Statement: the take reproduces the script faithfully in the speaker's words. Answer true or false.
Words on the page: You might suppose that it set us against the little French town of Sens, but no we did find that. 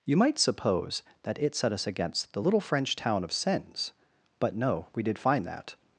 true